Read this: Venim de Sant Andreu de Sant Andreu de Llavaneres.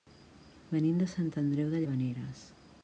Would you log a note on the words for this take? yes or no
yes